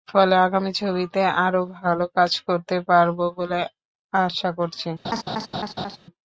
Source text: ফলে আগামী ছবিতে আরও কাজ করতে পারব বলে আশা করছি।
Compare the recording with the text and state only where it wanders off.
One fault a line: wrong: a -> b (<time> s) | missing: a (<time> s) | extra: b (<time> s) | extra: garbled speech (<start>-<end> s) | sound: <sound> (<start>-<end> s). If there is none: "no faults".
extra: ভালো (1.8 s)
sound: laugh (5.0-6.0 s)